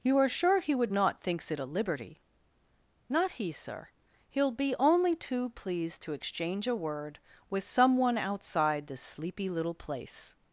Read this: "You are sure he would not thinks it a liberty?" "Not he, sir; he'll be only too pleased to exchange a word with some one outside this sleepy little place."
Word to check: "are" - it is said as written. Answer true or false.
true